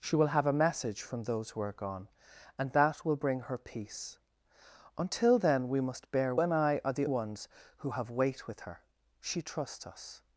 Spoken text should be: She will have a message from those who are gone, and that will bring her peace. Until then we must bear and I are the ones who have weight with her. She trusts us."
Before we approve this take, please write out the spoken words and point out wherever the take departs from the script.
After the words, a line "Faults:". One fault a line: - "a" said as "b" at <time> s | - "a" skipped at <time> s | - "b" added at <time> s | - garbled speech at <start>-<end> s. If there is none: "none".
She will have a message from those who are gone, and that will bring her peace. Until then we must bear and I are the ones who have weight with her. She trusts us."
Faults:
none